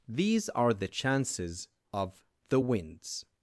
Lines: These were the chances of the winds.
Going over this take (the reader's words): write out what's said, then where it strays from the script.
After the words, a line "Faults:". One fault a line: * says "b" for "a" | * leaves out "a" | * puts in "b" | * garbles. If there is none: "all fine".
These are the chances of the winds.
Faults:
* says "are" for "were"